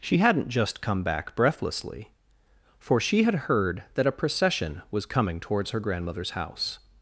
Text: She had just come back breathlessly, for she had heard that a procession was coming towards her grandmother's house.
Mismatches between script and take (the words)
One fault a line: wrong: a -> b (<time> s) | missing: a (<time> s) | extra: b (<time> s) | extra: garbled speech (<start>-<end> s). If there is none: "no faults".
wrong: had -> hadn't (0.2 s)